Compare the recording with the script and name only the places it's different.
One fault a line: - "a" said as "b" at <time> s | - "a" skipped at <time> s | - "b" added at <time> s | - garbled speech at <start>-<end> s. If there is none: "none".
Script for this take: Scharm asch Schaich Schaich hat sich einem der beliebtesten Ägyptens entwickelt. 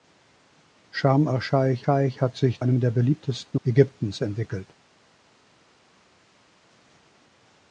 none